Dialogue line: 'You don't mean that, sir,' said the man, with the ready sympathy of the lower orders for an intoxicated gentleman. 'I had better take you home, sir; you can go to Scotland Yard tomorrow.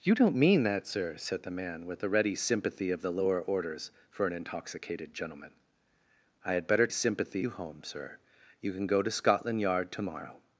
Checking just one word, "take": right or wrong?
wrong